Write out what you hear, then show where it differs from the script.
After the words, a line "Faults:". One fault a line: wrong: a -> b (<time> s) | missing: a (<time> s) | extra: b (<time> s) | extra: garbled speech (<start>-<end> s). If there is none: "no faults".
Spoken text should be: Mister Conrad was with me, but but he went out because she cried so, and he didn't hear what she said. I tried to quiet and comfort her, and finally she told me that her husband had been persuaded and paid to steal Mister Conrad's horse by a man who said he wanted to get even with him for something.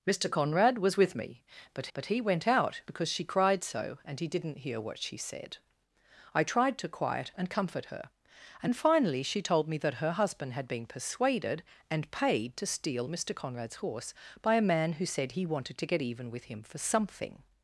Mister Conrad was with me, but but he went out because she cried so, and he didn't hear what she said. I tried to quiet and comfort her, and finally she told me that her husband had been persuaded and paid to steal Mister Conrad's horse by a man who said he wanted to get even with him for something.
Faults:
no faults